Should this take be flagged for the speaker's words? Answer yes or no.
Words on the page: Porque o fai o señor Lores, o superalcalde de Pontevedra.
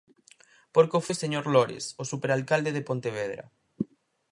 yes